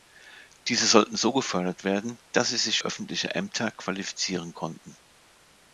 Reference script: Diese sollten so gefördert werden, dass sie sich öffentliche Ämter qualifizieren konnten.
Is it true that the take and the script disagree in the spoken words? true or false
false